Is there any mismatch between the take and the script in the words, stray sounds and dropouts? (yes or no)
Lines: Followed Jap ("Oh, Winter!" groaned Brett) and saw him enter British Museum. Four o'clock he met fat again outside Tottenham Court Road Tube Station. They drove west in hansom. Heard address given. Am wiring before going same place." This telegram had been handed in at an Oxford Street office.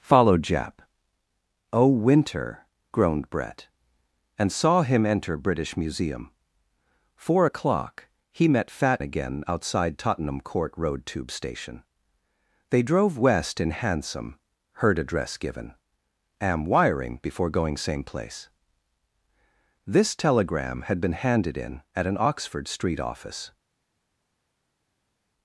no